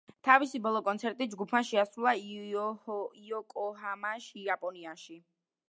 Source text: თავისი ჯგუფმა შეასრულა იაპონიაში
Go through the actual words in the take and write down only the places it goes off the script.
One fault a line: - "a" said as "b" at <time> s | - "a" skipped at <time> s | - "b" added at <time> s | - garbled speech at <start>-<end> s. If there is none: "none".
- "ბოლო კონცერტი" added at 0.7 s
- "იოკოჰამაში" added at 3.3 s